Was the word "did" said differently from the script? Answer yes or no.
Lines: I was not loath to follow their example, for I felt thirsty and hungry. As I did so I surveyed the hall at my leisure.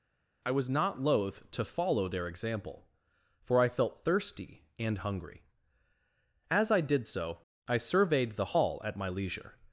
no